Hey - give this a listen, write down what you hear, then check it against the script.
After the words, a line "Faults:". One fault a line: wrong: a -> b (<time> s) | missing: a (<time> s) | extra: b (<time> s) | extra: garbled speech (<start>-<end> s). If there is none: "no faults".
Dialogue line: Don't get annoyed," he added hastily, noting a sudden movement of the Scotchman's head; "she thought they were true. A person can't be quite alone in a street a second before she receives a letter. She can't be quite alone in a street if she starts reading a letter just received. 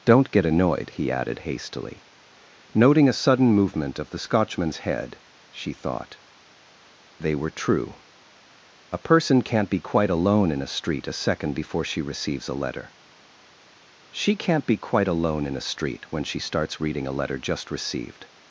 Don't get annoyed," he added hastily, noting a sudden movement of the Scotchman's head; "she thought they were true. A person can't be quite alone in a street a second before she receives a letter. She can't be quite alone in a street when she starts reading a letter just received.
Faults:
wrong: if -> when (16.1 s)